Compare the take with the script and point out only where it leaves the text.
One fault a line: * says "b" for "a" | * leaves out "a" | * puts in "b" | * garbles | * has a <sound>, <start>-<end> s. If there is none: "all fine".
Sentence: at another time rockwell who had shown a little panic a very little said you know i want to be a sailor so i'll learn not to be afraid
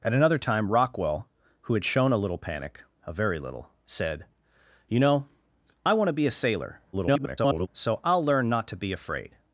* garbles